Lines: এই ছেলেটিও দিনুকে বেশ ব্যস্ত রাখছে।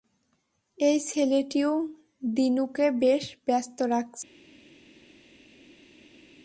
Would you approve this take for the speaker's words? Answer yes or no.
yes